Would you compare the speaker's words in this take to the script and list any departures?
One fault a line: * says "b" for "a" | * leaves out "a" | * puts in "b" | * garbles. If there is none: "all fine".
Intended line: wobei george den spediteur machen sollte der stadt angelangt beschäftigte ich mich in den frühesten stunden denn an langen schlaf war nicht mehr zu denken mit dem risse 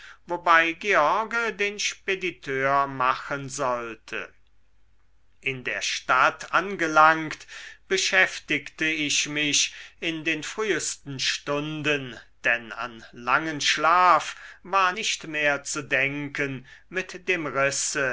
* puts in "in"